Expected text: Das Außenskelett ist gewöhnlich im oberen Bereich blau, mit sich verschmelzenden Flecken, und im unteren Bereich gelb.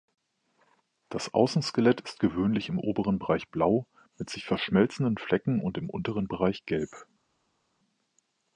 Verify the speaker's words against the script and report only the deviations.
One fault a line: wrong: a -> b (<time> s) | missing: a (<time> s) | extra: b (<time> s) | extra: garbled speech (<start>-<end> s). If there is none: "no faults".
no faults